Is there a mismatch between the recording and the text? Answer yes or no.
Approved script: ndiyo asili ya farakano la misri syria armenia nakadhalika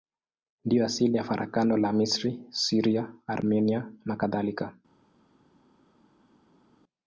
no